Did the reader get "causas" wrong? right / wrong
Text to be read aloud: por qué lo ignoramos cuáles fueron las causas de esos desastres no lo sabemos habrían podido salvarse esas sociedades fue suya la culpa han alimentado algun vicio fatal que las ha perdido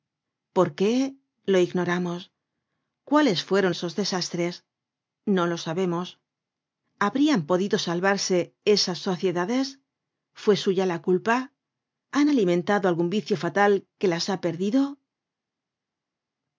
wrong